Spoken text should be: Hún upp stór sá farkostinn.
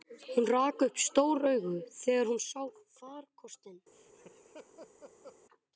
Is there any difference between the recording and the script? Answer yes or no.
yes